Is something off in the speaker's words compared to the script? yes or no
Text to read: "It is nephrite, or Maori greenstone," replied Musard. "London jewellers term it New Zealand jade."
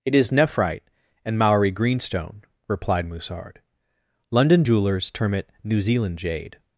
yes